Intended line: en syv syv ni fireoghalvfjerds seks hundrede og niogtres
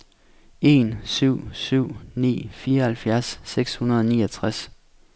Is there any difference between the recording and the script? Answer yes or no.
no